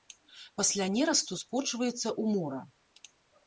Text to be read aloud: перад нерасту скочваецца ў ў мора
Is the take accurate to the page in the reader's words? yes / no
no